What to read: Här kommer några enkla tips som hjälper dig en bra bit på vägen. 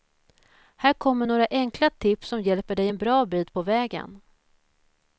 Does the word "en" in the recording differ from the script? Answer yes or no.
no